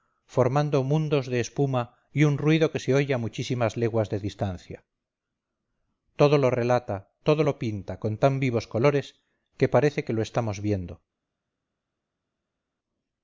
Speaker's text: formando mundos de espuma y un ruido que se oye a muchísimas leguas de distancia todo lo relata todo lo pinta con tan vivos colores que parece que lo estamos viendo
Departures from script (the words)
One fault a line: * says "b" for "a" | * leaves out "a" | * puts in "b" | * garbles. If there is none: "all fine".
all fine